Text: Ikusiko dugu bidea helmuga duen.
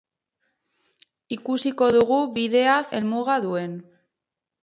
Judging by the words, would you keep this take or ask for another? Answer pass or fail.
pass